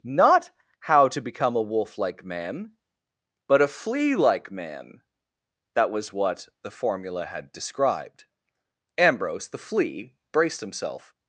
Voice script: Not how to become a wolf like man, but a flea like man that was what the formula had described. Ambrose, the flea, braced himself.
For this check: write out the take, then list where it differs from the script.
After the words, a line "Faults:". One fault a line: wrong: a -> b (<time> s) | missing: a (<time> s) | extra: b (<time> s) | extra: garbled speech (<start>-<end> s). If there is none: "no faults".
Not how to become a wolf like man, but a flea like man that was what the formula had described. Ambrose, the flea, braced himself.
Faults:
no faults